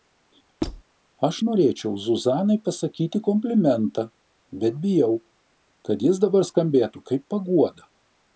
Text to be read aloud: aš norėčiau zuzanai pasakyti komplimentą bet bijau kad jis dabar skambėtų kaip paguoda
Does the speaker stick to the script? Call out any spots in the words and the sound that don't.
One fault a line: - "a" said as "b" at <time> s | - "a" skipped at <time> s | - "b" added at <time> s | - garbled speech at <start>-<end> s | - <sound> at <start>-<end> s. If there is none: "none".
- squeak at 0.6-0.8 s